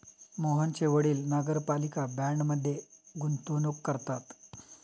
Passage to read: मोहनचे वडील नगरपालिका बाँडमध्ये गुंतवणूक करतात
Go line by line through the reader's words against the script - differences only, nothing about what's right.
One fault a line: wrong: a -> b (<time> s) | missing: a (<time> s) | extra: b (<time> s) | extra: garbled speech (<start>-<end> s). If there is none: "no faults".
no faults